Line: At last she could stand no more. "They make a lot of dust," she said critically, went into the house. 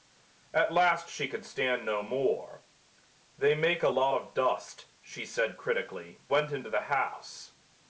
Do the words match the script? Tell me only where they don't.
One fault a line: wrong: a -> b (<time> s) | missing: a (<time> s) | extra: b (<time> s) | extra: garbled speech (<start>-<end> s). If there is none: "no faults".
no faults